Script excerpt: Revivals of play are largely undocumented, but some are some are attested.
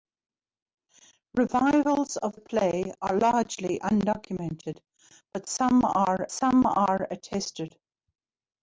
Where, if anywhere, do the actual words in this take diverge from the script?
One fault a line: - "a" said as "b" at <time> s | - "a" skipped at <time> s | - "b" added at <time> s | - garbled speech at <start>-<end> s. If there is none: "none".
none